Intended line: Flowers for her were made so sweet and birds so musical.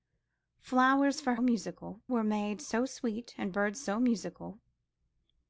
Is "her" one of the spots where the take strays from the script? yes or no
yes